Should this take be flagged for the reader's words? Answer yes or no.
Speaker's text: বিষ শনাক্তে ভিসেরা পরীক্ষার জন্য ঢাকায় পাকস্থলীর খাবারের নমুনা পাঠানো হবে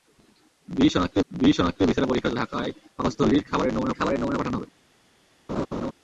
yes